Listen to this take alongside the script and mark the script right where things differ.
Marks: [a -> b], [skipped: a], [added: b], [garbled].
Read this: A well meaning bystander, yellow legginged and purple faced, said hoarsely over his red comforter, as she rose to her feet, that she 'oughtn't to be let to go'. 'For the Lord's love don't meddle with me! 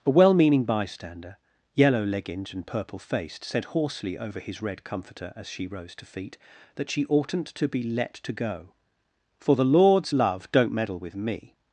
A well meaning bystander, yellow legginged and purple faced, said hoarsely over his red comforter, as she rose to [skipped: her] feet, that she 'oughtn't to be let to go'. 'For the Lord's love don't meddle with me!